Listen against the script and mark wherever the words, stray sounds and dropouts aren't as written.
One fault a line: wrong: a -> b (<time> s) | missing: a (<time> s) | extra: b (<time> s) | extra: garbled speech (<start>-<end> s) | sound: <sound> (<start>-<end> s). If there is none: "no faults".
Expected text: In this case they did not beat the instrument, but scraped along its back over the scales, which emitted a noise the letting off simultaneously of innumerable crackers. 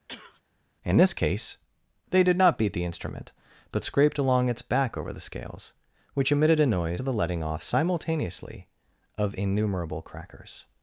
sound: sneeze (0.1-0.4 s)